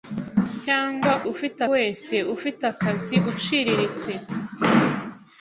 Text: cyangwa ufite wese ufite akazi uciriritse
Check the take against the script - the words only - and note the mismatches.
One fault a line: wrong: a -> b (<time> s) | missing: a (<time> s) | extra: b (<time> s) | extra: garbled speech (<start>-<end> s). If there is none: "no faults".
no faults